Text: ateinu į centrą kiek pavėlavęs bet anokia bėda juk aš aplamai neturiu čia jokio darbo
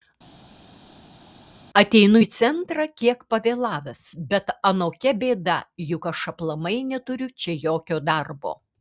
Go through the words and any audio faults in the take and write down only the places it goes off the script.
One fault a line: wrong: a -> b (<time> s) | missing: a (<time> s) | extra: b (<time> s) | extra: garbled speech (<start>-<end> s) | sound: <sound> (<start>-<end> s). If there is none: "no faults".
no faults